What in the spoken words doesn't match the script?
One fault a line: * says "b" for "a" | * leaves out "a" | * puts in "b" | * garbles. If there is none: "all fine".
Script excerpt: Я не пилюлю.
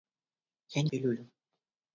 all fine